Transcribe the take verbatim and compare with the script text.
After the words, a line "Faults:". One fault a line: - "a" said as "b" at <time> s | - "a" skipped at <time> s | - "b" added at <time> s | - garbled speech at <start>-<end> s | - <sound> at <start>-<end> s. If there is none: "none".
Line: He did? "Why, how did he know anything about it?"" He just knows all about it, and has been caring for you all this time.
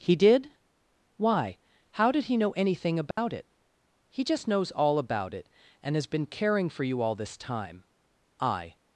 He did? "Why, how did he know anything about it?"" He just knows all about it, and has been caring for you all this time. I
Faults:
- dropout at 3.1-3.2 s
- "I" added at 8.4 s